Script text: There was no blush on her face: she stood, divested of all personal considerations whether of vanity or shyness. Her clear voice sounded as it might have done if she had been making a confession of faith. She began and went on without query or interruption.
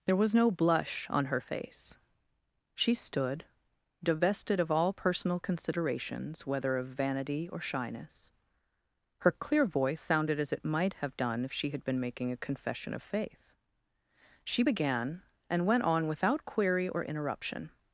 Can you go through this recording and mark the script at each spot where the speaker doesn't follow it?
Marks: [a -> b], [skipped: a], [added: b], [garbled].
There was no blush on her face: she stood, divested of all personal considerations whether of vanity or shyness. Her clear voice sounded as it might have done if she had been making a confession of faith. She began and went on without query or interruption.